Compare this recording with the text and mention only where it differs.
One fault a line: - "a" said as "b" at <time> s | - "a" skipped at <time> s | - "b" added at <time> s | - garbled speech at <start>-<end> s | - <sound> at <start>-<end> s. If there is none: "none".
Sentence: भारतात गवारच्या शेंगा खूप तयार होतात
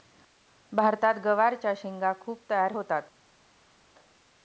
none